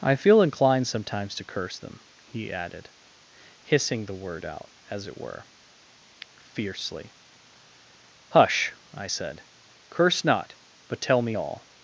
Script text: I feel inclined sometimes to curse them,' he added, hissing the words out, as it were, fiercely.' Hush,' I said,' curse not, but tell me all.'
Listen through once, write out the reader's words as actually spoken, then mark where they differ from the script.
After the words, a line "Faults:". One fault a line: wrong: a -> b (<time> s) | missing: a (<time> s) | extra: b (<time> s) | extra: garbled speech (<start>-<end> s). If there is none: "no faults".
I feel inclined sometimes to curse them,' he added, hissing the word out, as it were, fiercely.' Hush,' I said,' curse not, but tell me all.'
Faults:
wrong: words -> word (4.1 s)